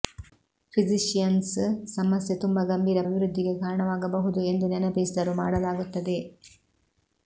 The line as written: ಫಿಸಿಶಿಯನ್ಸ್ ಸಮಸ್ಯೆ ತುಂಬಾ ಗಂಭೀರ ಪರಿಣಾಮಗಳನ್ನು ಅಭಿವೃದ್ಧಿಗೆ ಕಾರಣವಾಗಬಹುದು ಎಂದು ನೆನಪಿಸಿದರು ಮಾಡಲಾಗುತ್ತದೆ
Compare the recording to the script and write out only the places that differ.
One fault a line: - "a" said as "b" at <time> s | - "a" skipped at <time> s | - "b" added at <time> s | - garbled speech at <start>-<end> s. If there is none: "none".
- "ಪರಿಣಾಮಗಳನ್ನು" skipped at 3.0 s